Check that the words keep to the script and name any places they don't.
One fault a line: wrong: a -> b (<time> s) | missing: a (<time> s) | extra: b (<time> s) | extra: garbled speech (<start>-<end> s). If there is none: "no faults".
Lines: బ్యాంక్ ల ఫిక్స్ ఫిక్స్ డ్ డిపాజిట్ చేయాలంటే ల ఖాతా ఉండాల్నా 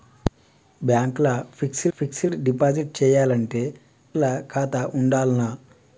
no faults